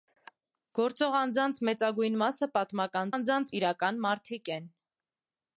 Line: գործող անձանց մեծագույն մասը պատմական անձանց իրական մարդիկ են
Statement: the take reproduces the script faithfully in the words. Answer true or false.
true